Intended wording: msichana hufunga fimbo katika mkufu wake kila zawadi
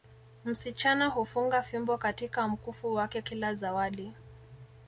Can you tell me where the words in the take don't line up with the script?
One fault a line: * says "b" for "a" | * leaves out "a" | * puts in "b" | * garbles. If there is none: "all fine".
all fine